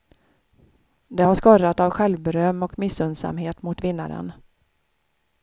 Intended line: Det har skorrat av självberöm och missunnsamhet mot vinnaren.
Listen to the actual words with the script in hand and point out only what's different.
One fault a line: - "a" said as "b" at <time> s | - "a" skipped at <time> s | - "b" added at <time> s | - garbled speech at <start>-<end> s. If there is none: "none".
none